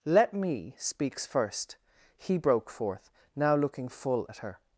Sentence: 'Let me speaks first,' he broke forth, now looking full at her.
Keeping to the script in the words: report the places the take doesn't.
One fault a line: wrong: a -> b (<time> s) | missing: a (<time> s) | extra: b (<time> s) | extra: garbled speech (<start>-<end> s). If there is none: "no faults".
no faults